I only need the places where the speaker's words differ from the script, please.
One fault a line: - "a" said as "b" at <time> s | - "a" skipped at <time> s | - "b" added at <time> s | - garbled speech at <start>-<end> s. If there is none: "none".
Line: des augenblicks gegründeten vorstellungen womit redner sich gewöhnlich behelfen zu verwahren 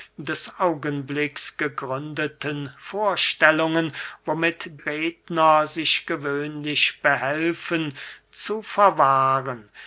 none